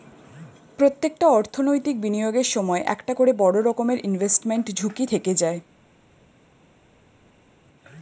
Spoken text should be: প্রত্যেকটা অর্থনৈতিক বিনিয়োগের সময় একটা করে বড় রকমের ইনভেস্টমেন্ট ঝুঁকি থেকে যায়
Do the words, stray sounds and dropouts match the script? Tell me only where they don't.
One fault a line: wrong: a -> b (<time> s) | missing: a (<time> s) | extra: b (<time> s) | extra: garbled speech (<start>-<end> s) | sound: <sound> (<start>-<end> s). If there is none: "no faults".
no faults